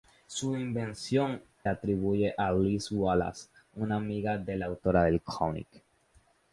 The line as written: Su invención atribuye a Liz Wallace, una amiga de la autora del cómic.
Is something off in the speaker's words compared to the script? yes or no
no